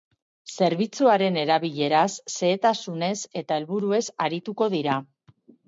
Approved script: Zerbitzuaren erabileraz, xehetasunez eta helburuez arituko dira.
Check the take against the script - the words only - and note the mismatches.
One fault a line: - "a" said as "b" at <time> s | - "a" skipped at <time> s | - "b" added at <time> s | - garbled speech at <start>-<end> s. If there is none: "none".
none